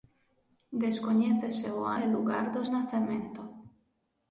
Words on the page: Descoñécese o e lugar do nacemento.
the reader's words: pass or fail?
pass